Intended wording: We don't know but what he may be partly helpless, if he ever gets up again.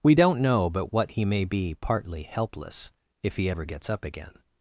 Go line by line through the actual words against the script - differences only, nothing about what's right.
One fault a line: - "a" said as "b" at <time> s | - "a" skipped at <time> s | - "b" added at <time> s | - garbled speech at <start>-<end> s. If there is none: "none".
none